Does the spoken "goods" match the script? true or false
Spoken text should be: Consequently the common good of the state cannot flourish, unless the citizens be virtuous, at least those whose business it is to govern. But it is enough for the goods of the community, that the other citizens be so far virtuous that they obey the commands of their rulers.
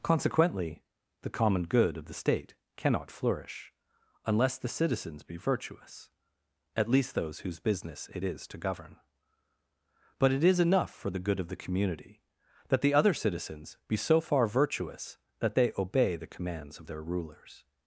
false